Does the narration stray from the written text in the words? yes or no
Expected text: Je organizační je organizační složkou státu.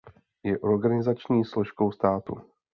yes